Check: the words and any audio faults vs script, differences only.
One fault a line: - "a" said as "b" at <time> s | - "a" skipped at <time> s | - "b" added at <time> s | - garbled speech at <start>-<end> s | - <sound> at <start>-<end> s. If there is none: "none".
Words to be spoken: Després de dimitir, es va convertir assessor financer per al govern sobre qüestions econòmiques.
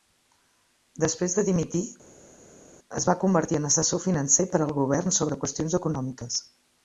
- "en" added at 3.6 s